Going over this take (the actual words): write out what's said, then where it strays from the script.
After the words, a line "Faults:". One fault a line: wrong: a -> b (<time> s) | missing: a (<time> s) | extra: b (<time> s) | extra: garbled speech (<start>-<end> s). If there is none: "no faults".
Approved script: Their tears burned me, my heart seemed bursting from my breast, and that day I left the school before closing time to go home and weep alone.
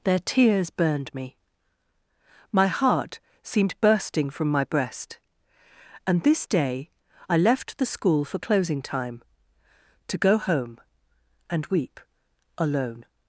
Their tears burned me, my heart seemed bursting from my breast, and this day I left the school for closing time to go home and weep alone.
Faults:
wrong: that -> this (6.2 s)
wrong: before -> for (8.2 s)